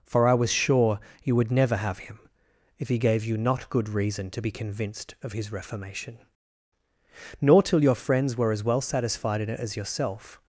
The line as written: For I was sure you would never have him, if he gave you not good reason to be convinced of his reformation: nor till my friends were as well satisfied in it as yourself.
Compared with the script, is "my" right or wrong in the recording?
wrong